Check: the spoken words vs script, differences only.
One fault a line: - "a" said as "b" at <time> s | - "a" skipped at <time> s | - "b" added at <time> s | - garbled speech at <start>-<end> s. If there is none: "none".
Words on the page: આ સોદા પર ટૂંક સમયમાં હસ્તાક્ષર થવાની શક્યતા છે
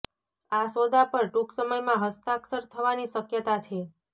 none